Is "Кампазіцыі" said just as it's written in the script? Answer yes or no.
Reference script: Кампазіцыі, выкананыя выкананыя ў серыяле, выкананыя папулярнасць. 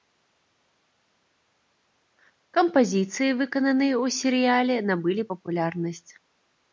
yes